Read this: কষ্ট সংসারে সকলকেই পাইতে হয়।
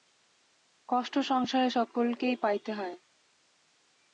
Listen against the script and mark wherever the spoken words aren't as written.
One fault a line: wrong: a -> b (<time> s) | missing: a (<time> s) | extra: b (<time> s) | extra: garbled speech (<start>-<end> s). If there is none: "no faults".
no faults